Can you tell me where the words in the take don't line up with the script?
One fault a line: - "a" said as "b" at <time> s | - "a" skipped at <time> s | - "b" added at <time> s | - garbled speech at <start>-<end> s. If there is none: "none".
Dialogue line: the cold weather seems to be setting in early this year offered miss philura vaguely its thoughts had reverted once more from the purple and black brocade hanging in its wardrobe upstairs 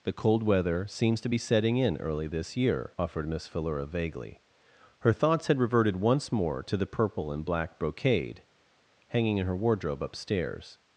- "its" said as "her" at 5.0 s
- "from" said as "to" at 6.6 s
- "its" said as "her" at 9.5 s